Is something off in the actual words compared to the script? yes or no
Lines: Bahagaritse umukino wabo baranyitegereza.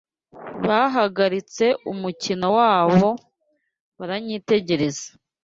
no